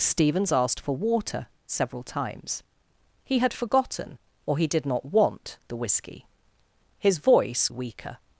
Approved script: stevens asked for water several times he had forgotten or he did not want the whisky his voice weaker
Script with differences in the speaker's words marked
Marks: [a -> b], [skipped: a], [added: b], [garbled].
stevens asked for water several times he had forgotten or he did not want the whisky his voice weaker